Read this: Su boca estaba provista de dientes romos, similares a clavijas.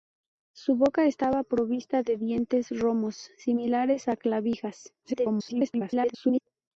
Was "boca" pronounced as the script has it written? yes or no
yes